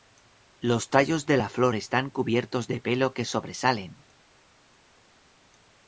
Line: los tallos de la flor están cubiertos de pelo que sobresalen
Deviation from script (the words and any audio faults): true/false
false